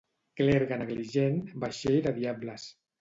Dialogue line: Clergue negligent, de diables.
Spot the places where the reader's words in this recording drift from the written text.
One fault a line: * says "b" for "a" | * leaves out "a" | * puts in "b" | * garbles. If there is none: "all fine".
* puts in "vaixell"